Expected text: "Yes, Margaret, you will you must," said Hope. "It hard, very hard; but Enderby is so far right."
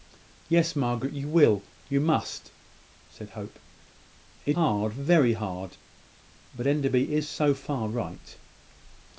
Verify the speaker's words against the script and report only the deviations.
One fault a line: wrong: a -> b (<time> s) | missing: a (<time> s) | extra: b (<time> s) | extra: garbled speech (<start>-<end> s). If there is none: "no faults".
no faults